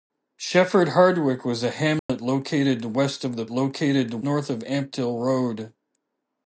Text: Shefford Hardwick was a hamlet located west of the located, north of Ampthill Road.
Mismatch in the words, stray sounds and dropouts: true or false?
true